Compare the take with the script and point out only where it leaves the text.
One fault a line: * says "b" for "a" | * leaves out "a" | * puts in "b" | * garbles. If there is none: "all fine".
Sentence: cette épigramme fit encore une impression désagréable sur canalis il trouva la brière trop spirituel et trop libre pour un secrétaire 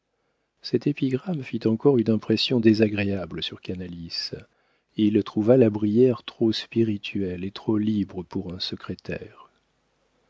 all fine